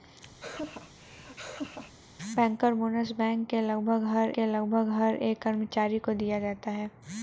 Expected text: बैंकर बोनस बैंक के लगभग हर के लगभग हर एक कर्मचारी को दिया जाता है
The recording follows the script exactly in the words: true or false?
true